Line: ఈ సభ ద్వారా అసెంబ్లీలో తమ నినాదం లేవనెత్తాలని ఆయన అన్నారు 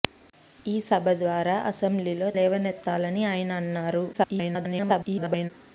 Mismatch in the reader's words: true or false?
true